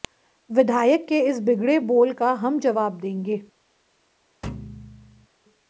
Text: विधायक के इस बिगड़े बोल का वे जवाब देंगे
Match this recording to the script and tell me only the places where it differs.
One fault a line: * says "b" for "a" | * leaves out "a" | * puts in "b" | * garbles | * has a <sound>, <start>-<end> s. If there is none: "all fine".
* says "हम" for "वे"
* has a thud, 4.4-5.3 s